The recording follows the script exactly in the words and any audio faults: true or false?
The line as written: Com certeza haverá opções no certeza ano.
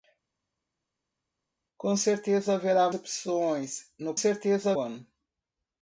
true